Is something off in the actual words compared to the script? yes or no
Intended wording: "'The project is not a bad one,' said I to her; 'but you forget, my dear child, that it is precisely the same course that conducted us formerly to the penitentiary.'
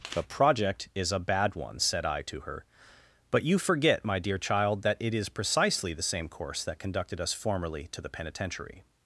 yes